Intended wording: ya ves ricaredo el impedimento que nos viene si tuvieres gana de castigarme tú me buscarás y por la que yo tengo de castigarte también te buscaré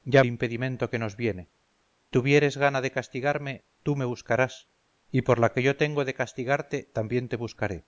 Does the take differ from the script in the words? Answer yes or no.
yes